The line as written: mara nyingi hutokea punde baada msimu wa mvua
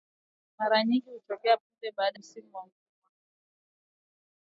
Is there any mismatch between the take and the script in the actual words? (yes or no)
no